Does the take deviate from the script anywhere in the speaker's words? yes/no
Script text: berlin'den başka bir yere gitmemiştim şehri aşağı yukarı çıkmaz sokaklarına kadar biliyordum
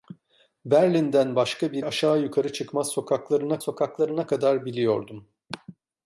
yes